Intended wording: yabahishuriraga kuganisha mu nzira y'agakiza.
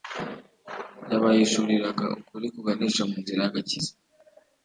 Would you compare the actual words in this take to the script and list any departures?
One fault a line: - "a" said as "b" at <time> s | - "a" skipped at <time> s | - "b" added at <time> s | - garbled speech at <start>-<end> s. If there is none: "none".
- "ukuri" added at 2.2 s